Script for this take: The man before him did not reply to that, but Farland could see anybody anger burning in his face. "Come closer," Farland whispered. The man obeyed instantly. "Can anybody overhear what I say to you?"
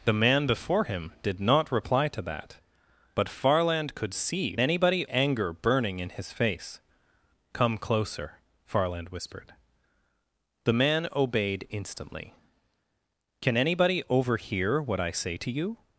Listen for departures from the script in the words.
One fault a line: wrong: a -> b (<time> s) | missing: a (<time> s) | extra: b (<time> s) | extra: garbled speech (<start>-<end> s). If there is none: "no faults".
no faults